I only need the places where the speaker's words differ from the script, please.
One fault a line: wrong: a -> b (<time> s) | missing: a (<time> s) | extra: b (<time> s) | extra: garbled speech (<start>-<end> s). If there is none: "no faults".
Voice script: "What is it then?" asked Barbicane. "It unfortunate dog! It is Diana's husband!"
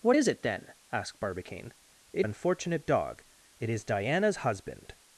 no faults